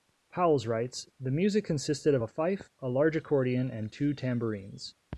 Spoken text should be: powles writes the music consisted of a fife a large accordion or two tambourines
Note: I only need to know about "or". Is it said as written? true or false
false